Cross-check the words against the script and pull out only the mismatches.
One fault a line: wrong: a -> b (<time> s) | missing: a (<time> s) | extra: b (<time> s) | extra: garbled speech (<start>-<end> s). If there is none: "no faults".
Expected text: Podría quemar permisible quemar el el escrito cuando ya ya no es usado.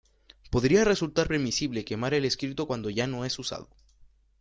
wrong: quemar -> resultar (0.8 s)
missing: el (2.2 s)
missing: ya (3.1 s)